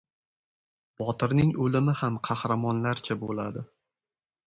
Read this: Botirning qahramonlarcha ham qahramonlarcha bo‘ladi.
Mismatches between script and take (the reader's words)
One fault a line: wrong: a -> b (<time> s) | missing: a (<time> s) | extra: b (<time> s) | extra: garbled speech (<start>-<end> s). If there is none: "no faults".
wrong: qahramonlarcha -> o‘limi (1.7 s)